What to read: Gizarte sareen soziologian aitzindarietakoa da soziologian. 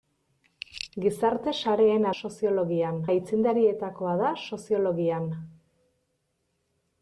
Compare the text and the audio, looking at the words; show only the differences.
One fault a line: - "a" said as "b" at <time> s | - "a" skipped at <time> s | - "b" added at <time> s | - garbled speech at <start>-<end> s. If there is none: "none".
none